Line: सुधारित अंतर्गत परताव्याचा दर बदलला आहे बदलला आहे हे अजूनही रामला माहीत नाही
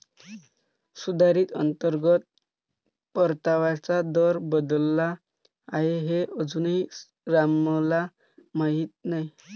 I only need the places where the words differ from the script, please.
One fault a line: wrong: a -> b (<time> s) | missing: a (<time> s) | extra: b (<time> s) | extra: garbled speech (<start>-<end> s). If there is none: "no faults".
missing: बदलला आहे (6.0 s)